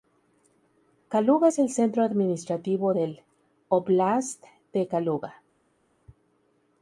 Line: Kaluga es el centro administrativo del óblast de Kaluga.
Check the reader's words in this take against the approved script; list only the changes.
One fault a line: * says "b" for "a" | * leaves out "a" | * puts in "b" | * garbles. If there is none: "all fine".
all fine